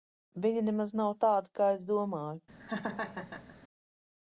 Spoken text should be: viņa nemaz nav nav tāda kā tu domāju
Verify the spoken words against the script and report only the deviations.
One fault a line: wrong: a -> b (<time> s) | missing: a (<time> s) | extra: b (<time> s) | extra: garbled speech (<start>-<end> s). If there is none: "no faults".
missing: nav (1.1 s)
wrong: tu -> es (1.7 s)